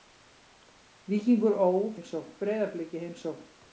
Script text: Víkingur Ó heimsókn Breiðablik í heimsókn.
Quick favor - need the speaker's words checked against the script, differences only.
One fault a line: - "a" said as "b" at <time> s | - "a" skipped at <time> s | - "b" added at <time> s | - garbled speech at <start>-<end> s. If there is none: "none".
none